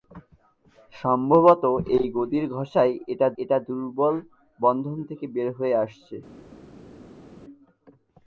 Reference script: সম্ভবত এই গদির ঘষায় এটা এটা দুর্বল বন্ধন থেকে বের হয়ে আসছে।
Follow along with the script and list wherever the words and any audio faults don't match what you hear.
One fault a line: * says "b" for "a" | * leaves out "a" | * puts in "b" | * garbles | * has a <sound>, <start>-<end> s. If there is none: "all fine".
all fine